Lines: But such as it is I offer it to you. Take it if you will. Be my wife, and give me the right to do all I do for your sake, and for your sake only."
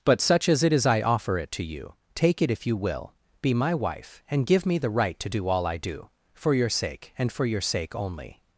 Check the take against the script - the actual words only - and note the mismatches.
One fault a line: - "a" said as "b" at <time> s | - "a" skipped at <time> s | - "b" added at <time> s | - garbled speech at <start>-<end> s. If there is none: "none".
none